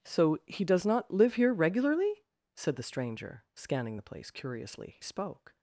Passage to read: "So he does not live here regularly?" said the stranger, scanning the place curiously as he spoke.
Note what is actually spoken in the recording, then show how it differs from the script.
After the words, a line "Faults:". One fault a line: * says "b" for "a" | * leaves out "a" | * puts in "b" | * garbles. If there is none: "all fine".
"So he does not live here regularly?" said the stranger, scanning the place curiously he spoke.
Faults:
* leaves out "as"